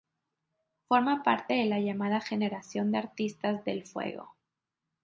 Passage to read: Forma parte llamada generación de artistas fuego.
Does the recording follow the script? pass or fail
fail